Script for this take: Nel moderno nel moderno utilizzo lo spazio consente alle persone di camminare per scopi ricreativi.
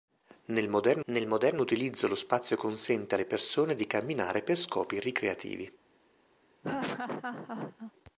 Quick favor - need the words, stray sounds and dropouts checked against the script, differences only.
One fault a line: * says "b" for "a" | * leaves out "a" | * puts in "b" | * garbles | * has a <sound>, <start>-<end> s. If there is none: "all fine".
* has a laugh, 6.6-7.9 s